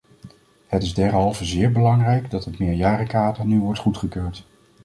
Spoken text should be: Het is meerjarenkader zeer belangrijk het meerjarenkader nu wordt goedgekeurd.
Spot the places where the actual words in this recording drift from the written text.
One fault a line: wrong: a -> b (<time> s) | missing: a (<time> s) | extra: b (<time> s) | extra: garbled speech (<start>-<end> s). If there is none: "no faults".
wrong: meerjarenkader -> derhalve (0.9 s)
extra: dat (2.3 s)